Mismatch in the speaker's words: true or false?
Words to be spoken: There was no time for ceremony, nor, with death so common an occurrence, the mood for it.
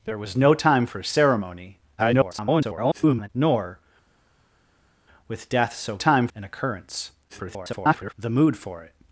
true